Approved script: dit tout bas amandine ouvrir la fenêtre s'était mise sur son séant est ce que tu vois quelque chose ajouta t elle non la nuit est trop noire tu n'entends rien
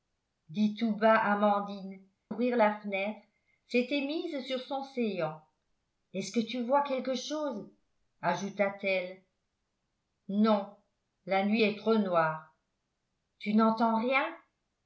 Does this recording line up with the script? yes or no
yes